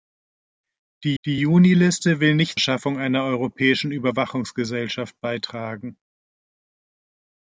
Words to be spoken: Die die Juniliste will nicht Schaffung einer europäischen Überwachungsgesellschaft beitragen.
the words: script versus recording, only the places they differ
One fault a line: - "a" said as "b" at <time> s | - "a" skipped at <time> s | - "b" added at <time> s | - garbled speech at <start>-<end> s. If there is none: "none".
none